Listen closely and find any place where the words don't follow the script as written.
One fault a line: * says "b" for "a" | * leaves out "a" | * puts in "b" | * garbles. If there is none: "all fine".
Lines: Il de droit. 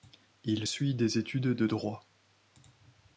* puts in "suit des études"